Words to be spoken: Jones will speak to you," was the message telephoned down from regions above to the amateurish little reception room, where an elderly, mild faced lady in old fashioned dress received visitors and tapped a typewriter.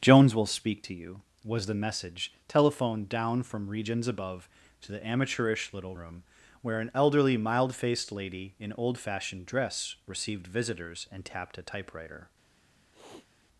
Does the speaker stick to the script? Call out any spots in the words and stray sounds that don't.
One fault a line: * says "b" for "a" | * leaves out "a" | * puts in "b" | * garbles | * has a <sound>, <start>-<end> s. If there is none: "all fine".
* leaves out "reception"
* has a sniff, 12.9-13.3 s